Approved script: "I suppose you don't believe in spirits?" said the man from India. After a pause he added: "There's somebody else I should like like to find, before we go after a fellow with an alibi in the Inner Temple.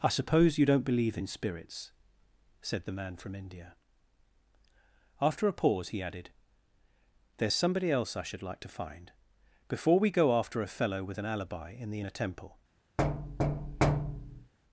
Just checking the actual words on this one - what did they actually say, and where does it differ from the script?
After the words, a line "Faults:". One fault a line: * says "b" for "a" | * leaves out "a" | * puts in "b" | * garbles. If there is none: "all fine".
"I suppose you don't believe in spirits?" said the man from India. After a pause he added: "There's somebody else I should like to find, before we go after a fellow with an alibi in the Inner Temple.
Faults:
* leaves out "like"